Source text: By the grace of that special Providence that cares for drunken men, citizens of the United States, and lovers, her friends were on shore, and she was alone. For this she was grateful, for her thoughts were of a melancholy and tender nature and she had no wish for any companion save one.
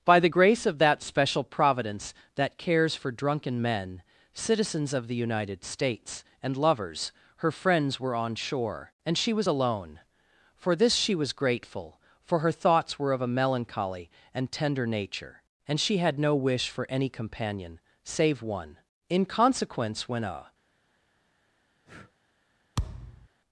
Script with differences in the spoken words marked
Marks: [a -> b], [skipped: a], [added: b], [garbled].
By the grace of that special Providence that cares for drunken men, citizens of the United States, and lovers, her friends were on shore, and she was alone. For this she was grateful, for her thoughts were of a melancholy and tender nature and she had no wish for any companion save one. [added: In consequence when a]